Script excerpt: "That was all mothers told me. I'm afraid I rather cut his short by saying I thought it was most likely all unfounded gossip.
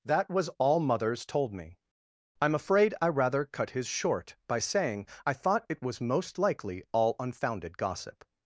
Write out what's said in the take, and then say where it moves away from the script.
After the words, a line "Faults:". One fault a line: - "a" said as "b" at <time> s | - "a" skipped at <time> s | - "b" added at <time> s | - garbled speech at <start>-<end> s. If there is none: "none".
"That was all mothers told me. I'm afraid I rather cut his short by saying I thought it was most likely all unfounded gossip.
Faults:
none